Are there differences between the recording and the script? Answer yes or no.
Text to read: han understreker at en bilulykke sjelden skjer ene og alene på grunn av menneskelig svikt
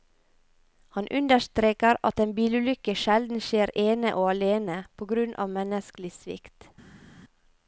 no